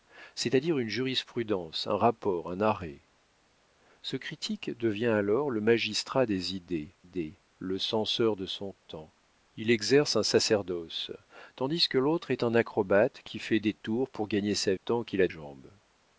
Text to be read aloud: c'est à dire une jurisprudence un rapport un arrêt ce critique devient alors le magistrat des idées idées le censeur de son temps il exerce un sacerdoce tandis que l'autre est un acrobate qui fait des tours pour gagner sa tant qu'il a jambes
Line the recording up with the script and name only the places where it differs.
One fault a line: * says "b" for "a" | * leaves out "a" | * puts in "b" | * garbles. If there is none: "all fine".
all fine